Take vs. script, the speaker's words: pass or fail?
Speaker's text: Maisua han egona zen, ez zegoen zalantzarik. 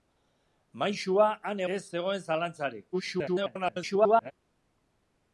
fail